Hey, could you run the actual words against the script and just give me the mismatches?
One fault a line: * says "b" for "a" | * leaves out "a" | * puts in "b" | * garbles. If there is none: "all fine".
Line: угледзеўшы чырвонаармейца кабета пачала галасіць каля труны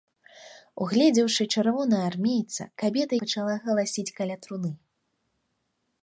all fine